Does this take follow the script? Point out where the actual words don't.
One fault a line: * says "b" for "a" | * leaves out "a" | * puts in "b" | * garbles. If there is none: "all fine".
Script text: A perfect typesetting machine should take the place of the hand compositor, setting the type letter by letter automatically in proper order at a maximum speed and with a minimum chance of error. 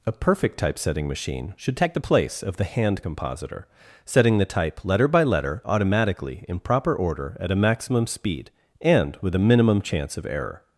all fine